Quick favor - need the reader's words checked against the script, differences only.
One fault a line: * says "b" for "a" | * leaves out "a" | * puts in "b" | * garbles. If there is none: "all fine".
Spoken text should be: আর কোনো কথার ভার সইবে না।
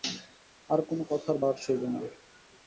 all fine